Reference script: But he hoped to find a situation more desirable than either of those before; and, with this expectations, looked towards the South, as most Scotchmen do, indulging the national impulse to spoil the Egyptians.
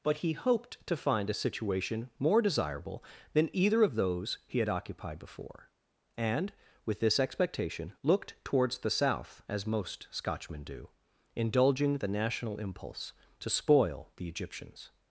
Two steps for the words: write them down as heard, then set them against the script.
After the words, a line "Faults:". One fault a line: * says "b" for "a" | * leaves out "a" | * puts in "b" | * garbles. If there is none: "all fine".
But he hoped to find a situation more desirable than either of those he had occupied before; and, with this expectation, looked towards the South, as most Scotchmen do, indulging the national impulse to spoil the Egyptians.
Faults:
* puts in "he had occupied"
* says "expectation" for "expectations"